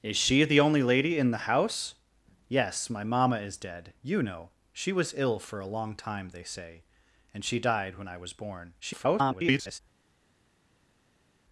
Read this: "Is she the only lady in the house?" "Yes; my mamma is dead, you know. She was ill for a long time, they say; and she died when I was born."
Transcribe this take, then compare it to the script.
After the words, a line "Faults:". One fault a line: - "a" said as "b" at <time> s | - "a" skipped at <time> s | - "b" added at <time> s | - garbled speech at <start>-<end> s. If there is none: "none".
"Is she the only lady in the house?" "Yes; my mamma is dead, you know. She was ill for a long time, they say; and she died when I was born." [garbled]
Faults:
- garbled speech at 8.8-9.8 s